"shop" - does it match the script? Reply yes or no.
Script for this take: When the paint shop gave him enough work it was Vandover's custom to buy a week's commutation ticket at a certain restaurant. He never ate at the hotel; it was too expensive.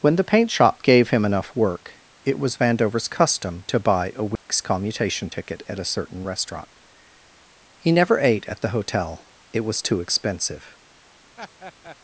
yes